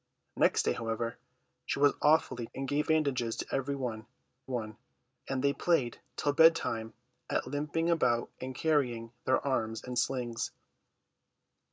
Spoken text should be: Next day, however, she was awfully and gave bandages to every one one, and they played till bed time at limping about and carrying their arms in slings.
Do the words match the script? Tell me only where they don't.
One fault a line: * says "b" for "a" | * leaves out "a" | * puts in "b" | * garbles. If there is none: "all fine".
all fine